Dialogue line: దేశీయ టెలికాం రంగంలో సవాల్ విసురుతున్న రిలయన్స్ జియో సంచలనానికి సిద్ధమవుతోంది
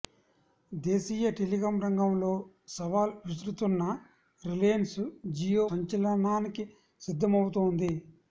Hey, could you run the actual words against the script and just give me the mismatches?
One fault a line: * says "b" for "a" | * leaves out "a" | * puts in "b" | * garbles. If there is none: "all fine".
all fine